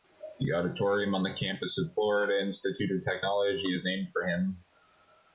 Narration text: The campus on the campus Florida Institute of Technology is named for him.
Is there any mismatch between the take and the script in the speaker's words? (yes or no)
yes